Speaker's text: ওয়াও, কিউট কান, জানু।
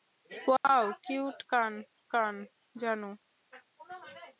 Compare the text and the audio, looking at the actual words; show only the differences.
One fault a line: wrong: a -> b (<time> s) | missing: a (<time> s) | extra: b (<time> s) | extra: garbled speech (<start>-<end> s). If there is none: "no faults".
extra: কান (2.1 s)